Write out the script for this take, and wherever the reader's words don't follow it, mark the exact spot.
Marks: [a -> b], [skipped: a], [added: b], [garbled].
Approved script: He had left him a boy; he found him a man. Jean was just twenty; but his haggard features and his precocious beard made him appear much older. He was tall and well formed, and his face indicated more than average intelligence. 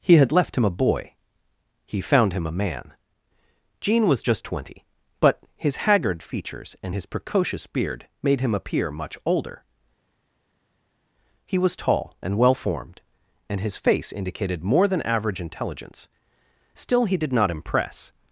He had left him a boy; he found him a man. Jean was just twenty; but his haggard features and his precocious beard made him appear much older. He was tall and well formed, and his face indicated more than average intelligence. [added: Still he did not impress]